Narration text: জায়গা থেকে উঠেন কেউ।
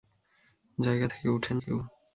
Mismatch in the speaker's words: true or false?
false